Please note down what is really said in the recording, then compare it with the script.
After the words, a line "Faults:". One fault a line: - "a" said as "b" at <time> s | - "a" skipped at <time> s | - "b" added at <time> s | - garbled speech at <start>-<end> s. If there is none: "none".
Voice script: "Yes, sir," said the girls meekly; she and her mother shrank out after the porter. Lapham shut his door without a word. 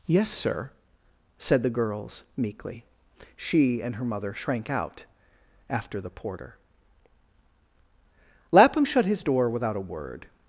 "Yes, sir," said the girls meekly; she and her mother shrank out after the porter. Lapham shut his door without a word.
Faults:
none